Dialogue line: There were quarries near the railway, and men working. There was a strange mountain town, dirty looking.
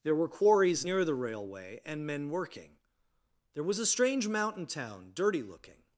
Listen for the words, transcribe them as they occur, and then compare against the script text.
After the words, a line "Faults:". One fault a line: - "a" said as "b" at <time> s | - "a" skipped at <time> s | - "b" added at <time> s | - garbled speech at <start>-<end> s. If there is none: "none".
There were quarries near the railway, and men working. There was a strange mountain town, dirty looking.
Faults:
none